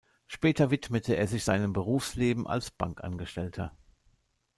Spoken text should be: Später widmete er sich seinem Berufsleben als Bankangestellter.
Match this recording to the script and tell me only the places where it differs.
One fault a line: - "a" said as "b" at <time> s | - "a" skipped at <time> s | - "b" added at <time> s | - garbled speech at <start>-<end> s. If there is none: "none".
none